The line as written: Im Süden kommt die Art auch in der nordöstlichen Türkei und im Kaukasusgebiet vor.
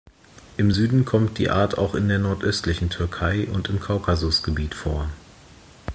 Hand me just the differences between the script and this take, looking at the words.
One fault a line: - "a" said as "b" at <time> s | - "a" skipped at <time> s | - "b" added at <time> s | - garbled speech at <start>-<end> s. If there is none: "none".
none